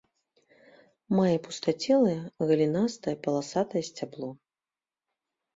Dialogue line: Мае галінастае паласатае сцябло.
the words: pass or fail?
fail